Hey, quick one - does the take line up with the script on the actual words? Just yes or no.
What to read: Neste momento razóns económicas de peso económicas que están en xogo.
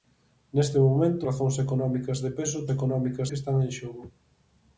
yes